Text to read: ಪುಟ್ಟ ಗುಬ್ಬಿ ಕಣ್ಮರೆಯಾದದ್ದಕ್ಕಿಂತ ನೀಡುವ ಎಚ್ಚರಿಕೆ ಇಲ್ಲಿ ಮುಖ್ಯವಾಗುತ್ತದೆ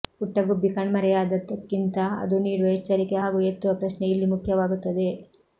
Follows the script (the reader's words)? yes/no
no